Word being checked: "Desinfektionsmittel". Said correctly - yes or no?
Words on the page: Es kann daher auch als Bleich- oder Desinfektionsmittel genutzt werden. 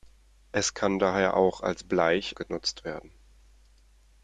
no